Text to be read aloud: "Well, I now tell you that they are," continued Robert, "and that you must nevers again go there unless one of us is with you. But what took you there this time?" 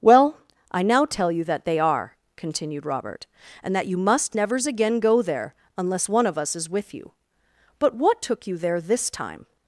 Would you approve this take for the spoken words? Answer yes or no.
yes